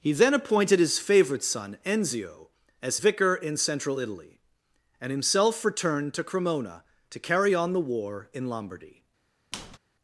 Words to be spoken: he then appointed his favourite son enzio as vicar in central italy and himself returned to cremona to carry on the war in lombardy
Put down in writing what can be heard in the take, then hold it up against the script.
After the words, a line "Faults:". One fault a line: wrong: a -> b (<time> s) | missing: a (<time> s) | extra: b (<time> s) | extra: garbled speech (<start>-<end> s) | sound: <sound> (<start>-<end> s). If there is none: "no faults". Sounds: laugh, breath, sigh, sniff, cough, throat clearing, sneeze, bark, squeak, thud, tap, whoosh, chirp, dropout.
he then appointed his favourite son enzio as vicar in central italy and himself returned to cremona to carry on the war in lombardy
Faults:
sound: squeak (9.5-9.8 s)